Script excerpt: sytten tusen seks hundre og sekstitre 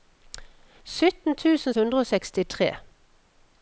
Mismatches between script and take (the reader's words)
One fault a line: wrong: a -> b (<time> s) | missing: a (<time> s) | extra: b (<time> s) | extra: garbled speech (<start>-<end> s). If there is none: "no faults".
missing: seks (1.8 s)